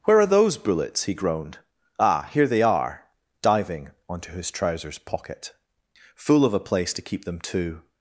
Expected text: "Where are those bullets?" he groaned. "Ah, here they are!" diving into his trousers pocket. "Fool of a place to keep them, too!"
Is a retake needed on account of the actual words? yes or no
yes